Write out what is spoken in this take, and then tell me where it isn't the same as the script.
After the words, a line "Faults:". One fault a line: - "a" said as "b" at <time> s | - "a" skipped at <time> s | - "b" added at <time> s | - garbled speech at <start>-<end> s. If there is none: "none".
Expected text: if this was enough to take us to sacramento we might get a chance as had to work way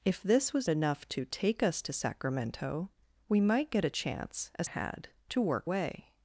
if this was enough to take us to sacramento we might get a chance as had to work way
Faults:
none